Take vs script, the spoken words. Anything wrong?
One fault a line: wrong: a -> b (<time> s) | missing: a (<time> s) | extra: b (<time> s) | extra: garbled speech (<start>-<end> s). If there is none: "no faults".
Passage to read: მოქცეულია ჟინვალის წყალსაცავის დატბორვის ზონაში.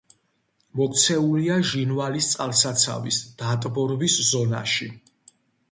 no faults